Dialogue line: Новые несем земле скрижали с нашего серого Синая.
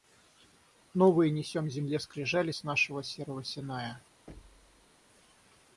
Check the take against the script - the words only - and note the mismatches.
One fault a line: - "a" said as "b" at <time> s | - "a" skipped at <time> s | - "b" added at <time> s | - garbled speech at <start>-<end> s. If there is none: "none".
none